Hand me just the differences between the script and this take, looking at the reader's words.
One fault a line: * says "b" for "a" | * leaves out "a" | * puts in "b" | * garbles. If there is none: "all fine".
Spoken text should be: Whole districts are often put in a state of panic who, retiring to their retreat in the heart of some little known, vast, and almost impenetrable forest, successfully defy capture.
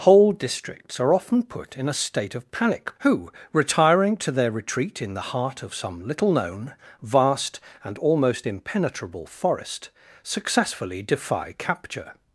all fine